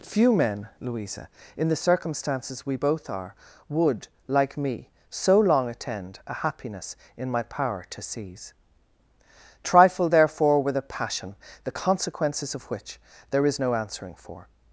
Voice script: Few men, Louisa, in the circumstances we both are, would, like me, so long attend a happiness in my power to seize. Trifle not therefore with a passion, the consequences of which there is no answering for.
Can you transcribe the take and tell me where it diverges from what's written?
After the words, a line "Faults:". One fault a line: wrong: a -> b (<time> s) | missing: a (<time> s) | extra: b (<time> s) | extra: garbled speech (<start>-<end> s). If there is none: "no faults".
Few men, Louisa, in the circumstances we both are, would, like me, so long attend a happiness in my power to seize. Trifle therefore with a passion, the consequences of which there is no answering for.
Faults:
missing: not (10.1 s)